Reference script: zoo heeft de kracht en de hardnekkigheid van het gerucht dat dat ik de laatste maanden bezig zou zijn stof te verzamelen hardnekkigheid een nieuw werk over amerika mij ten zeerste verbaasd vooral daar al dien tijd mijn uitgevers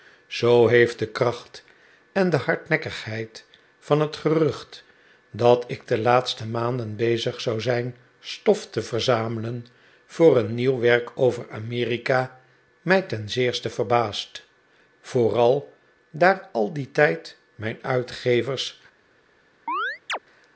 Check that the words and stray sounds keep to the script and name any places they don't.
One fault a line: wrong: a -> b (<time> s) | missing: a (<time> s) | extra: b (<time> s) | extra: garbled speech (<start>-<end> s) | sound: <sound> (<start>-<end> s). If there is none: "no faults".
missing: dat (5.6 s)
wrong: hardnekkigheid -> voor (10.1 s)
sound: chirp (19.7-20.2 s)